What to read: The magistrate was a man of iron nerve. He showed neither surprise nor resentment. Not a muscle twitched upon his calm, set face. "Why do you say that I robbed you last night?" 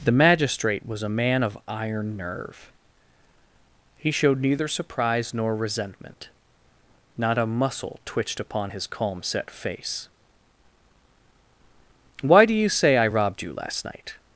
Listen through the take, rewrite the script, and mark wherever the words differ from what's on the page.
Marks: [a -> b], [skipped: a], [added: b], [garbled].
The magistrate was a man of iron nerve. He showed neither surprise nor resentment. Not a muscle twitched upon his calm, set face. "Why do you say [skipped: that] I robbed you last night?"